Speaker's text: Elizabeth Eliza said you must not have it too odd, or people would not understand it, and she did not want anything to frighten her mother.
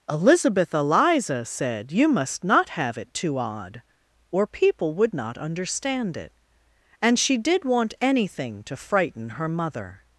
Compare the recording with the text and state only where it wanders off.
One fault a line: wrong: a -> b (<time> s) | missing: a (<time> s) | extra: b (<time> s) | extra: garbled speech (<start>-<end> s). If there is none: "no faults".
missing: not (7.6 s)